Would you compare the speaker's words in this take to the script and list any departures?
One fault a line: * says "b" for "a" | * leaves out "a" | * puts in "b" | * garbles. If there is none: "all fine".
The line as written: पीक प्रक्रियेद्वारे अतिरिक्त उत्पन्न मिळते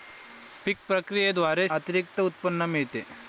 all fine